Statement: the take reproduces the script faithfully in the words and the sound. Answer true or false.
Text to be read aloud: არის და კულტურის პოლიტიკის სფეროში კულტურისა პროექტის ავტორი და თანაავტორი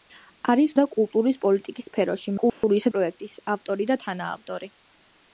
false